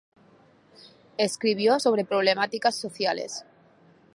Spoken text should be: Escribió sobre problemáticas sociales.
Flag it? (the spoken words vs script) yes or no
no